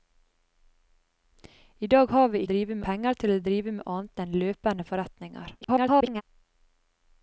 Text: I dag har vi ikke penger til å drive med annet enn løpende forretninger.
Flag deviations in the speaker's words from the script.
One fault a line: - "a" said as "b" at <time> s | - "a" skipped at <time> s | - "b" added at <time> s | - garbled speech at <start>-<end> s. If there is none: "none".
- "ikke" said as "drive" at 2.5 s
- garbled speech at 5.6-6.2 s